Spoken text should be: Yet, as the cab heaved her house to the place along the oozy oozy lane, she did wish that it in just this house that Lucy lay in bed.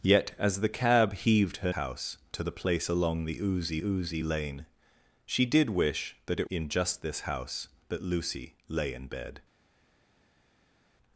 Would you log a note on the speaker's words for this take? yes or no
no